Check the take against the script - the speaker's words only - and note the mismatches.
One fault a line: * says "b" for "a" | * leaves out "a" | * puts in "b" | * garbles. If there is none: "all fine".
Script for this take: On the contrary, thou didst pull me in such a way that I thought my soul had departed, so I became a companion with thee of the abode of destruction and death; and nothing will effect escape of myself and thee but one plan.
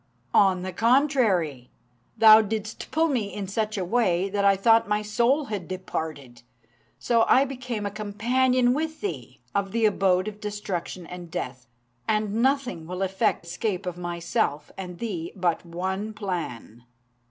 all fine